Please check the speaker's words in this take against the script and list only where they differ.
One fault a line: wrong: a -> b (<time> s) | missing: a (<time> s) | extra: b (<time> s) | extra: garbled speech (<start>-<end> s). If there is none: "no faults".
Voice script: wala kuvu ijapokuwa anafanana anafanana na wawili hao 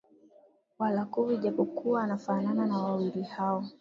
missing: anafanana (2.6 s)